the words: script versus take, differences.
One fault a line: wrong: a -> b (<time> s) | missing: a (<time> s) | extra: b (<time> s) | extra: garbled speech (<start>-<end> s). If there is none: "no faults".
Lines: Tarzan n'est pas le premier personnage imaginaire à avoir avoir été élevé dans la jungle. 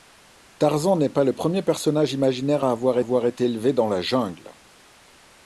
no faults